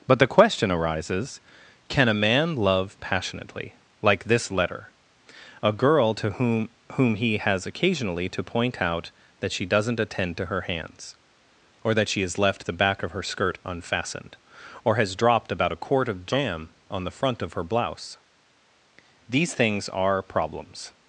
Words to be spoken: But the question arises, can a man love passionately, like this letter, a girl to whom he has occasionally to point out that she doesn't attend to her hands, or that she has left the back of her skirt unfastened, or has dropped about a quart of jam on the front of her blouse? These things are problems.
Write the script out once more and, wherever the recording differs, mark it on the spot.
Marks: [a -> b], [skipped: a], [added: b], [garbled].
But the question arises, can a man love passionately, like this letter, a girl to whom [added: whom] he has occasionally to point out that she doesn't attend to her hands, or that she has left the back of her skirt unfastened, or has dropped about a quart of jam on the front of her blouse? These things are problems.